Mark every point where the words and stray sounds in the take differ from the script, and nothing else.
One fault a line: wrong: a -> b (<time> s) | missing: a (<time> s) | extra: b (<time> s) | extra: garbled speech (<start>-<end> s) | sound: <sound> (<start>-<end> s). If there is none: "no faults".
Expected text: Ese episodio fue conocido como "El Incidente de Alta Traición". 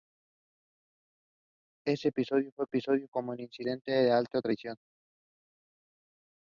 wrong: conocido -> episodio (2.7 s)